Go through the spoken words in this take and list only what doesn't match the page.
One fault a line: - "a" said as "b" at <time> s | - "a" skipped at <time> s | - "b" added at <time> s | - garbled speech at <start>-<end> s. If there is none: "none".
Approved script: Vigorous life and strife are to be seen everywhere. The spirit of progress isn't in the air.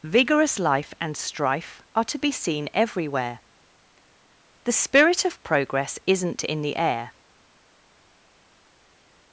none